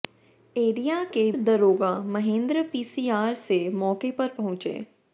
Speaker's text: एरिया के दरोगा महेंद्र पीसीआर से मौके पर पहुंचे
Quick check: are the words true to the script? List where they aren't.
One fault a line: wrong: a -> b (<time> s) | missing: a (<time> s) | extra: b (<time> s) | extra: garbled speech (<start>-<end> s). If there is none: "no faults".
no faults